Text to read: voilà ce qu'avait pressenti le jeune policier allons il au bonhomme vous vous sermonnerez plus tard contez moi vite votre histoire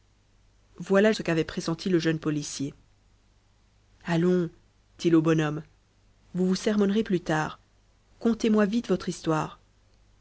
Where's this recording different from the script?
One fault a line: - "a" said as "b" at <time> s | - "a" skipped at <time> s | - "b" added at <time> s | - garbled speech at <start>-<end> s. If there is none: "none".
none